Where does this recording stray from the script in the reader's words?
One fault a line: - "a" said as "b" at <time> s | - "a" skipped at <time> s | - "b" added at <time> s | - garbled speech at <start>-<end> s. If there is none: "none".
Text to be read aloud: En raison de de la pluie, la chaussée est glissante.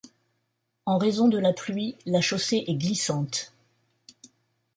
- "de" skipped at 1.4 s